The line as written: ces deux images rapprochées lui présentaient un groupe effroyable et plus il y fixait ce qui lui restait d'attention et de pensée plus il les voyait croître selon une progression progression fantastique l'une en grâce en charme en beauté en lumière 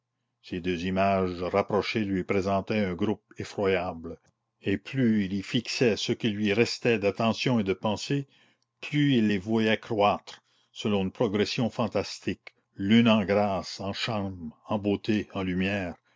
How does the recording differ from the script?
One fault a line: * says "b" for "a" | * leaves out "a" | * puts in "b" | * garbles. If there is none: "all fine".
* leaves out "progression"